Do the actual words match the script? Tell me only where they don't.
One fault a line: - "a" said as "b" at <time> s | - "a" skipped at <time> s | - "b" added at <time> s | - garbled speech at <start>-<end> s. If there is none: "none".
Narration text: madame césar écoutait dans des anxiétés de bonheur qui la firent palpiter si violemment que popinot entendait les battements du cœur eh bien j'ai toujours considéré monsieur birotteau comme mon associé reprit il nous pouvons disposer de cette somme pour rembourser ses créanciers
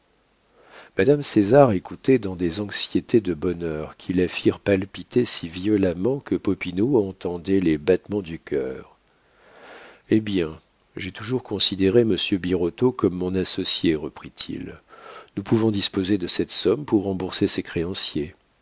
none